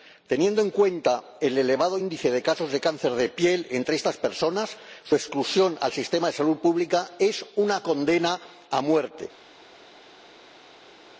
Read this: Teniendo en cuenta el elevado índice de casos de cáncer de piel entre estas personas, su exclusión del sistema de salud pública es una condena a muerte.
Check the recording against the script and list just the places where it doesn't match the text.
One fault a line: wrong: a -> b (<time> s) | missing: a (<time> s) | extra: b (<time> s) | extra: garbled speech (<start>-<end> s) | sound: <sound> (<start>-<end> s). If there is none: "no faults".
no faults